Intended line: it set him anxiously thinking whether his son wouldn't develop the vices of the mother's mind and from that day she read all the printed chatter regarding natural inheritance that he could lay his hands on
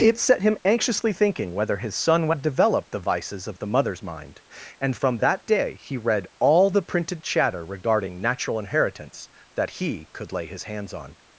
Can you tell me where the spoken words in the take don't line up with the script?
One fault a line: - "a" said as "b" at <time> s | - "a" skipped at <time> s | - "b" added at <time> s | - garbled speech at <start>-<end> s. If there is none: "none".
- "wouldn't" said as "would" at 2.3 s
- "she" said as "he" at 5.8 s